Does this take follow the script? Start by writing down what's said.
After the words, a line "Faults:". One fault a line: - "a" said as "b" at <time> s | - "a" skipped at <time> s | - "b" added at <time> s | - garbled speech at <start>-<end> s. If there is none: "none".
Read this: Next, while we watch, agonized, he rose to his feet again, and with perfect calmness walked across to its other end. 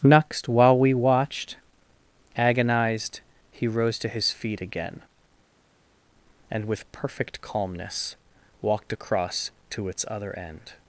Next, while we watched, agonized, he rose to his feet again, and with perfect calmness walked across to its other end.
Faults:
- "watch" said as "watched" at 0.9 s